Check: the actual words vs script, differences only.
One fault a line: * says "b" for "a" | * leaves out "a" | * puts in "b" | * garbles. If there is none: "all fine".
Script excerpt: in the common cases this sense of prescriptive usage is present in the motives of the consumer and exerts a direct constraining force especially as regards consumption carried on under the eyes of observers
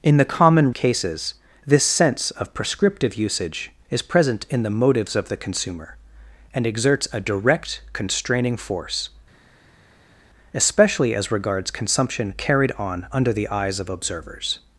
all fine